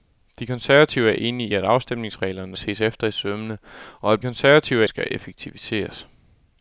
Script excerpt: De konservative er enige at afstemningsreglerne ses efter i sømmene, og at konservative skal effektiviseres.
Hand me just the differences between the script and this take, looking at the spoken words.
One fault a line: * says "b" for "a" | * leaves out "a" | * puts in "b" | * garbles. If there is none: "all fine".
all fine